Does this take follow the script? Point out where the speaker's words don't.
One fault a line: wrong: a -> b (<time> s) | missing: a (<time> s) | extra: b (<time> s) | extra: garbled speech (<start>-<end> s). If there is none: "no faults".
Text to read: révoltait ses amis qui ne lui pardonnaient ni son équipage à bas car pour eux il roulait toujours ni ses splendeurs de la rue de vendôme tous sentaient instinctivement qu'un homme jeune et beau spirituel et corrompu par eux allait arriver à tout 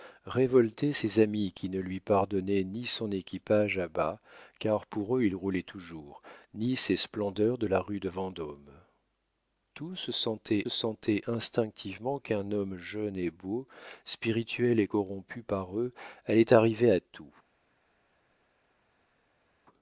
extra: sentaient (10.7 s)